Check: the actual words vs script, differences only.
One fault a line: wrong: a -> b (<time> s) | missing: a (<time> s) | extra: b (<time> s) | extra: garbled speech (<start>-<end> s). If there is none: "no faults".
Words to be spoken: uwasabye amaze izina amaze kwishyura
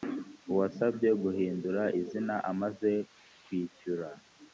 wrong: amaze -> guhindura (1.2 s)